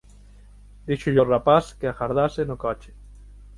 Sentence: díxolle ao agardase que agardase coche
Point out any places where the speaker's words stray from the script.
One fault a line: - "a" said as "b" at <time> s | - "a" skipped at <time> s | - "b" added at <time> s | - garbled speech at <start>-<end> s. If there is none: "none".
- "agardase" said as "rapaz" at 1.3 s
- "no" added at 2.4 s